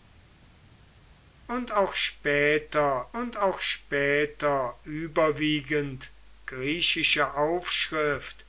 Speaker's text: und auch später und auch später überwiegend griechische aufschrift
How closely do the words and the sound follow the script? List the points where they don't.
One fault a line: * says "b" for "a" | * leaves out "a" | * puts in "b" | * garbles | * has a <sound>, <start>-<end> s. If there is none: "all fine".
all fine